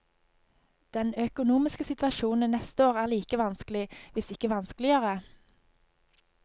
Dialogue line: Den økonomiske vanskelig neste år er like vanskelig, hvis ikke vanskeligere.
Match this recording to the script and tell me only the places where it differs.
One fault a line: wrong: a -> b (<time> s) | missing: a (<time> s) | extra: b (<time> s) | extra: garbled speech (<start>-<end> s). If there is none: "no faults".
wrong: vanskelig -> situasjonen (1.8 s)